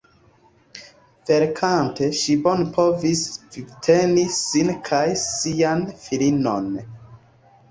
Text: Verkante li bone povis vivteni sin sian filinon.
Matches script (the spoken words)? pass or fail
fail